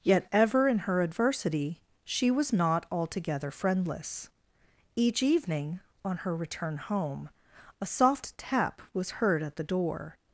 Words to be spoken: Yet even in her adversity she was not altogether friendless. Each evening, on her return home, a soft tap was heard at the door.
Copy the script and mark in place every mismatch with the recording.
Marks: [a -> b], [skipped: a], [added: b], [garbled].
Yet [even -> ever] in her adversity she was not altogether friendless. Each evening, on her return home, a soft tap was heard at the door.